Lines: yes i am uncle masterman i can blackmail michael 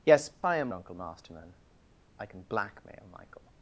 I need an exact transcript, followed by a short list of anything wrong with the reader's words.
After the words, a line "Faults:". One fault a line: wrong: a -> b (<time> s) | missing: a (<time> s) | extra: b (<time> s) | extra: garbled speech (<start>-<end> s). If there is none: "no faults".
yes i am uncle masterman i can blackmail michael
Faults:
no faults